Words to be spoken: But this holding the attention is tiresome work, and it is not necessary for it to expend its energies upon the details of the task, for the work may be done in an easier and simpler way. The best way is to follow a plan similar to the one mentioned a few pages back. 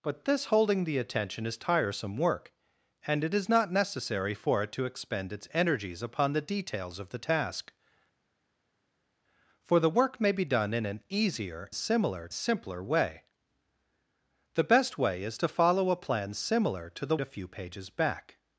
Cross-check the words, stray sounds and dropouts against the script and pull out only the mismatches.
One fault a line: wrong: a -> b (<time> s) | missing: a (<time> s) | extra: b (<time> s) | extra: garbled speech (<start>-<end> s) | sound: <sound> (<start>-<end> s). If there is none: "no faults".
wrong: and -> similar (11.7 s)
missing: one mentioned (17.2 s)